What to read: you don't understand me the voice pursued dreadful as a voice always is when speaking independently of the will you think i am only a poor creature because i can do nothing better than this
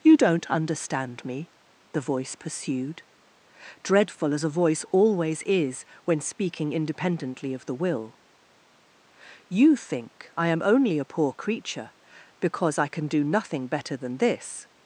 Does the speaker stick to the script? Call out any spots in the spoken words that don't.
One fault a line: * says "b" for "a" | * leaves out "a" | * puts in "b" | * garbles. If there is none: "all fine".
all fine